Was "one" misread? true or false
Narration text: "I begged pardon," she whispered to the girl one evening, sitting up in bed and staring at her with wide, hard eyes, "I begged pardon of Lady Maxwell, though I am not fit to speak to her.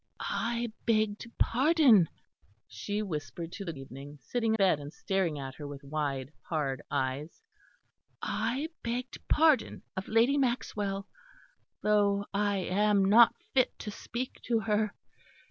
true